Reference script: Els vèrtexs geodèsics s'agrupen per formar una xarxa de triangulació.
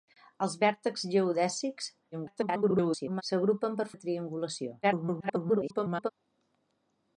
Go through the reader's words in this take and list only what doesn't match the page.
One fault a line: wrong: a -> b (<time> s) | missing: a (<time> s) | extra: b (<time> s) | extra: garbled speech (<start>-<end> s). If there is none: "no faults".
extra: garbled speech (2.1-3.2 s)
missing: formar una xarxa (3.9 s)
extra: garbled speech (4.8-6.1 s)